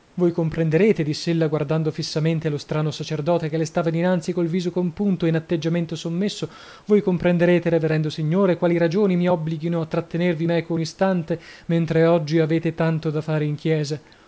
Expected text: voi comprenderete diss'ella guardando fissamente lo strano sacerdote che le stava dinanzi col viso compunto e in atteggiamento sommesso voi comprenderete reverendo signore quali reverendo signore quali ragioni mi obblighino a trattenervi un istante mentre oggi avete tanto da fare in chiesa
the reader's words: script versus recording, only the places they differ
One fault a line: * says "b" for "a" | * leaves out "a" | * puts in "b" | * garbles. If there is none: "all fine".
* leaves out "reverendo signore quali"
* puts in "meco"